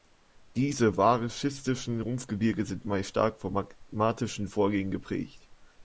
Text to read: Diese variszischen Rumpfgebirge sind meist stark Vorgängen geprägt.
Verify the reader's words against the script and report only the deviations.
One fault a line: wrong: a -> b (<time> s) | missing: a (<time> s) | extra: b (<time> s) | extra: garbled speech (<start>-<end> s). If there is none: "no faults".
extra: von magmatischen (3.4 s)